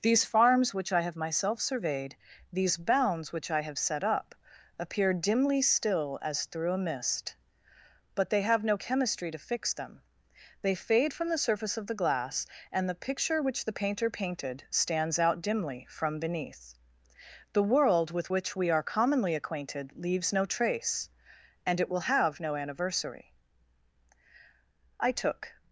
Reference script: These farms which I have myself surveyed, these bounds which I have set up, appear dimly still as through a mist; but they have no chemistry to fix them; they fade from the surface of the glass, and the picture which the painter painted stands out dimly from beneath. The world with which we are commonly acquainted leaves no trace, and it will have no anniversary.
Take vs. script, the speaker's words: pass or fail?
fail